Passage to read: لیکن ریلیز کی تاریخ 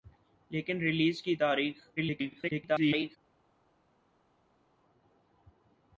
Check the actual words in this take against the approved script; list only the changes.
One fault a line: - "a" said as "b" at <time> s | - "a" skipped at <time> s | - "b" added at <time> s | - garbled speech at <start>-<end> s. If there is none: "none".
- garbled speech at 2.0-3.2 s